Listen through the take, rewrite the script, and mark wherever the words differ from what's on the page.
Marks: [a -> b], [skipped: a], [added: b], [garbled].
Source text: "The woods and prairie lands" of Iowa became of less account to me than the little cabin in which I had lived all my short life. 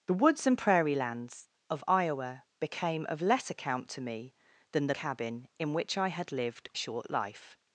"The woods and prairie lands" of Iowa became of less account to me than the [skipped: little] cabin in which I had lived [skipped: all my] short life.